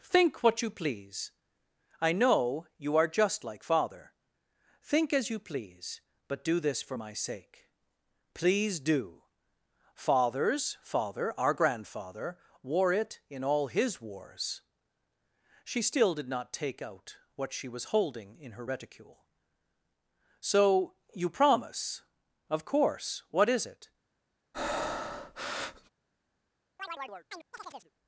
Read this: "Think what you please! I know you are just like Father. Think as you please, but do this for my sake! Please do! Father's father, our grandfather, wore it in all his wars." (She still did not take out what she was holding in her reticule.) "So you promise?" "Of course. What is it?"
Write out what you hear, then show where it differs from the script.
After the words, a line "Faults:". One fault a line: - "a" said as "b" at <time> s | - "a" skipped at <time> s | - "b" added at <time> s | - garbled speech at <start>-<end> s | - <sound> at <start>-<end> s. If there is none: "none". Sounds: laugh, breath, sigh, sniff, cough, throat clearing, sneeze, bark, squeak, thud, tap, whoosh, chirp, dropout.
"Think what you please! I know you are just like Father. Think as you please, but do this for my sake! Please do! Father's father, our grandfather, wore it in all his wars." (She still did not take out what she was holding in her reticule.) "So you promise?" "Of course. What is it?"
Faults:
- breath at 24.5-25.9 s
- chirp at 26.8-27.9 s